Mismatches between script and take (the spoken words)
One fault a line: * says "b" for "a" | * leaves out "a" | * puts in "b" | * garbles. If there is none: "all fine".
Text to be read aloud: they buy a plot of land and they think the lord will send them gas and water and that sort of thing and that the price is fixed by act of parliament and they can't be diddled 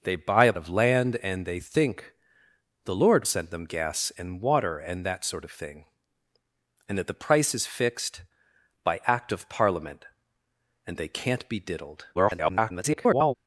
* leaves out "plot"
* leaves out "will"
* garbles